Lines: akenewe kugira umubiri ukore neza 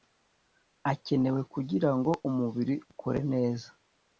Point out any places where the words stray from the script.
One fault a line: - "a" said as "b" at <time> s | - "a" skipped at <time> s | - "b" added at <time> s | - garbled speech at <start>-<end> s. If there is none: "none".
- "ngo" added at 2.0 s